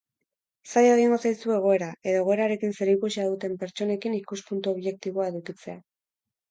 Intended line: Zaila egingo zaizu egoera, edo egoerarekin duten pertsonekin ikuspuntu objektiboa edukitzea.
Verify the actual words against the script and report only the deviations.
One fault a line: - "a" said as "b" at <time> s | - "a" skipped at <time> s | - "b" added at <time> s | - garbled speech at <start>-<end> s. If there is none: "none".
- "zerikusia" added at 2.8 s